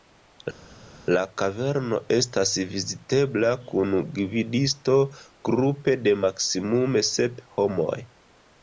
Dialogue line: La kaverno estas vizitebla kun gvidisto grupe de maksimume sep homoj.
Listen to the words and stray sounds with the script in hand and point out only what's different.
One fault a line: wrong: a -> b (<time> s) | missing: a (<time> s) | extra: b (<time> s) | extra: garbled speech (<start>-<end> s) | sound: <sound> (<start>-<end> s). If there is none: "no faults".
no faults